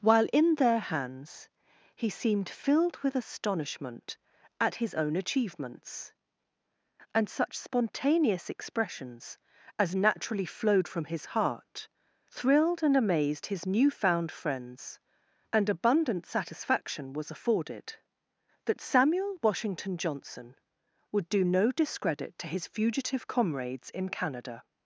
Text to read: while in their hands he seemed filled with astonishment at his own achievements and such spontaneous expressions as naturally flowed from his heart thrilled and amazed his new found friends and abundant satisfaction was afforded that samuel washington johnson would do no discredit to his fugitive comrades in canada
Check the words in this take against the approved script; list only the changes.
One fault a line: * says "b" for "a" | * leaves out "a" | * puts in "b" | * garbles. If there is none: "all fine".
all fine